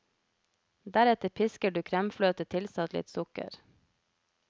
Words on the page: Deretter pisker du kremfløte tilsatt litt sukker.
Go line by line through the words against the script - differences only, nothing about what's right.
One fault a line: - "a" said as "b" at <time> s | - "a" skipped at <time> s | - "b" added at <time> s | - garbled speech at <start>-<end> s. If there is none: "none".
none